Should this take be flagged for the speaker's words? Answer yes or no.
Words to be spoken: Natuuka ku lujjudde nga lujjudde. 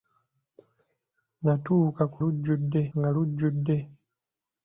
no